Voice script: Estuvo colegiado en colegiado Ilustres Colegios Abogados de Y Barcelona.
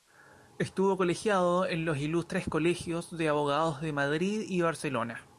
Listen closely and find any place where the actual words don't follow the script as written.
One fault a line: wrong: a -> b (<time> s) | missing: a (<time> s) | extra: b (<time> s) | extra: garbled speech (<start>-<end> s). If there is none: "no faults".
wrong: colegiado -> los (1.9 s)
extra: de (3.2 s)
extra: Madrid (3.9 s)